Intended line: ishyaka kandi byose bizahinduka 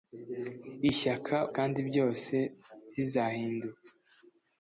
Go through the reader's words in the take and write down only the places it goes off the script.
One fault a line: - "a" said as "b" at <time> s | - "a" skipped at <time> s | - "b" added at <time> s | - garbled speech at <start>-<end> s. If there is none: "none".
none